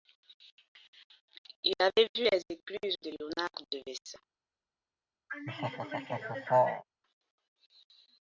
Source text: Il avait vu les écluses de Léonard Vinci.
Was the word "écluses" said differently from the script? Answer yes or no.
no